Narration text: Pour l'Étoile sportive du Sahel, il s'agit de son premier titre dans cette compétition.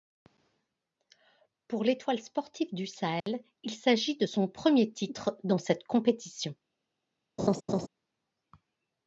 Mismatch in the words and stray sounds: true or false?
true